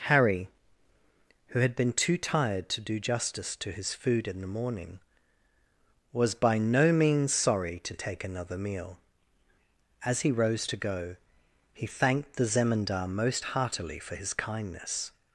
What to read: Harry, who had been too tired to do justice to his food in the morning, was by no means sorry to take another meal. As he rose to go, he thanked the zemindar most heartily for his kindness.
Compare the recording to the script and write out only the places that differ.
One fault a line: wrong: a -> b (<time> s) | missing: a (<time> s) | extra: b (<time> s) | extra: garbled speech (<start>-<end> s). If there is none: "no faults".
no faults